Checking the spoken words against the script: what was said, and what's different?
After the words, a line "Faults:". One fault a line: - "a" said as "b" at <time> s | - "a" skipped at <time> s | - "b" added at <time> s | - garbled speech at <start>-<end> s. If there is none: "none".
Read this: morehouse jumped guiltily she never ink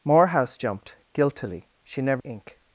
morehouse jumped guiltily she never ink
Faults:
none